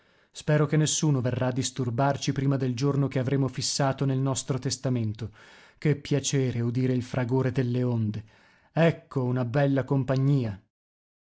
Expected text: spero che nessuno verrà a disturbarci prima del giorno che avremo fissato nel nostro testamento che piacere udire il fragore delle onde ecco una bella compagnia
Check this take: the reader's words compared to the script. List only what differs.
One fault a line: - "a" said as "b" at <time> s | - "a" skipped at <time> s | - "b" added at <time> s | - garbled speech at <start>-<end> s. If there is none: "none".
none